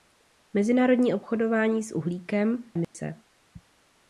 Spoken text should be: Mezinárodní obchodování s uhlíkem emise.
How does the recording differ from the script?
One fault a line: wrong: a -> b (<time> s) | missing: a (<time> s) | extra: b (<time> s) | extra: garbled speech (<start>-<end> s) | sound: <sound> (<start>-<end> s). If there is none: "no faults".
sound: dropout (2.8-2.9 s)